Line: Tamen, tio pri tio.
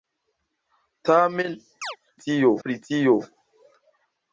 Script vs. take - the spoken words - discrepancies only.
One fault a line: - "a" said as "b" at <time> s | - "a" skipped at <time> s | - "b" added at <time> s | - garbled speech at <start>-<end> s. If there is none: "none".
none